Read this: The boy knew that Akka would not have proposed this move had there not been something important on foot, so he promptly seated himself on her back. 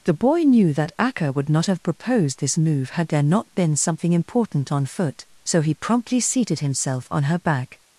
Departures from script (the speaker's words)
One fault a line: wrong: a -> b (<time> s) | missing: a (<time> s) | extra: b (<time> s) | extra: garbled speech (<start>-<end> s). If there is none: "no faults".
no faults